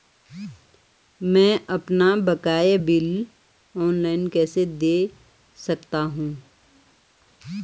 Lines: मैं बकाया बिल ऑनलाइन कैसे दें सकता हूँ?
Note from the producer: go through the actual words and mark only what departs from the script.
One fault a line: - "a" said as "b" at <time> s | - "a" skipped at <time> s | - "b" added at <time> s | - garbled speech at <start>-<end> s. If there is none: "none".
- "अपना" added at 1.7 s